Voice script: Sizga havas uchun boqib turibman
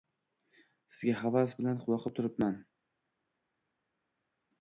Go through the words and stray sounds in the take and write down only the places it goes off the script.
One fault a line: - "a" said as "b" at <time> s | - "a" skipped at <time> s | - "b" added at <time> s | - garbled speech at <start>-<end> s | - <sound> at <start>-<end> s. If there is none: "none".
- "uchun" said as "bilan" at 1.6 s